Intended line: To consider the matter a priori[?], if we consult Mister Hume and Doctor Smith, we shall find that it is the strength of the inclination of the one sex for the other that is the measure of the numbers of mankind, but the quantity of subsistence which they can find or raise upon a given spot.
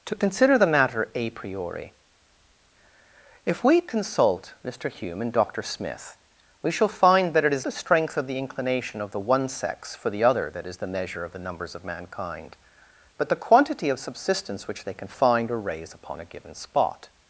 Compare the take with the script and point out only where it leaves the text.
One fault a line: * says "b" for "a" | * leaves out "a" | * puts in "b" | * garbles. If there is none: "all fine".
all fine